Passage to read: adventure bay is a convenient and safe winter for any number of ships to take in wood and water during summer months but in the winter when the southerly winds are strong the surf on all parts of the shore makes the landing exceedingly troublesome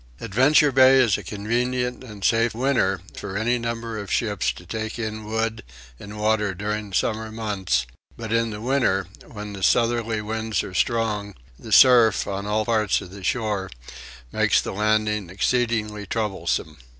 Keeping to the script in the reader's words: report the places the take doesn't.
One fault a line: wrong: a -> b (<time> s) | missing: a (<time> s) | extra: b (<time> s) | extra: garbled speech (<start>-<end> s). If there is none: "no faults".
no faults